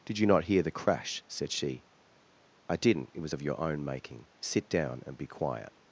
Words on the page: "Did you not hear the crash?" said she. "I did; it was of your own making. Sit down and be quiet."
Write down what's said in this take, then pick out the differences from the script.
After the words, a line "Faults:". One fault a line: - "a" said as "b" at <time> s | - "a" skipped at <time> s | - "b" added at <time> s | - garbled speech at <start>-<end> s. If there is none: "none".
"Did you not hear the crash?" said she. "I didn't; it was of your own making. Sit down and be quiet."
Faults:
- "did" said as "didn't" at 2.8 s